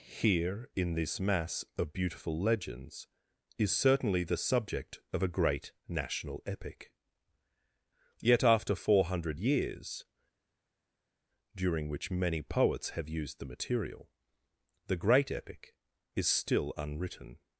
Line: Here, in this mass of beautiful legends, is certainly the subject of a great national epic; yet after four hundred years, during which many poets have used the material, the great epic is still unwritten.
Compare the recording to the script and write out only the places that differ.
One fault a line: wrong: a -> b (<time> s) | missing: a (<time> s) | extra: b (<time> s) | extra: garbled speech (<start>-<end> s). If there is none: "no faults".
no faults